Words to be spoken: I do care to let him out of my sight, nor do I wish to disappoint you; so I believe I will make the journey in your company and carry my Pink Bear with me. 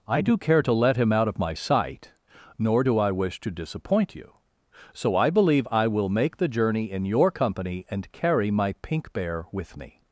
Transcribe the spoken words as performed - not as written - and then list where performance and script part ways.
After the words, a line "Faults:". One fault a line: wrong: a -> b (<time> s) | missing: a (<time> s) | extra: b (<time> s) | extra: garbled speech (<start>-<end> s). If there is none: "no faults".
I do care to let him out of my sight, nor do I wish to disappoint you; so I believe I will make the journey in your company and carry my Pink Bear with me.
Faults:
no faults